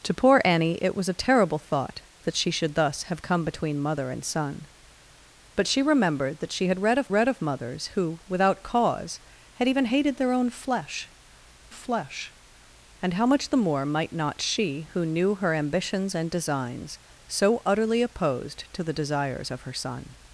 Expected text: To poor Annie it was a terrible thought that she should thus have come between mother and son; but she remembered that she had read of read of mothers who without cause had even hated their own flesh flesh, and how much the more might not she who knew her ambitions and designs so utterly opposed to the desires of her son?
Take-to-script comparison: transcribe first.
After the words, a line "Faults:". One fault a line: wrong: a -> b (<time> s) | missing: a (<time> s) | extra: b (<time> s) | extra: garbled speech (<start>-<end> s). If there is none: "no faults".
To poor Annie it was a terrible thought that she should thus have come between mother and son; but she remembered that she had read of read of mothers who without cause had even hated their own flesh flesh, and how much the more might not she who knew her ambitions and designs so utterly opposed to the desires of her son?
Faults:
no faults